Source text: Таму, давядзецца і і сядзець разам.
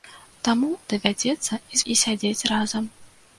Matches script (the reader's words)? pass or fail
pass